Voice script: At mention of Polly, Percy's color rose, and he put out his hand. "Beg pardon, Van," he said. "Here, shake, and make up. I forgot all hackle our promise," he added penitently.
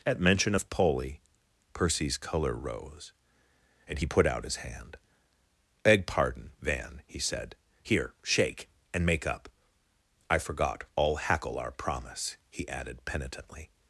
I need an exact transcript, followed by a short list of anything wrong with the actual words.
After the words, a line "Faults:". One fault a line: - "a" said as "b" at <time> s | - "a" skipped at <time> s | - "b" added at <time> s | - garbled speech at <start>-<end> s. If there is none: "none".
At mention of Polly, Percy's color rose, and he put out his hand. "Beg pardon, Van," he said. "Here, shake, and make up. I forgot all hackle our promise," he added penitently.
Faults:
none